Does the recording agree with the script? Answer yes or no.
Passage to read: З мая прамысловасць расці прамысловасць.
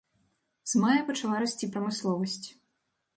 no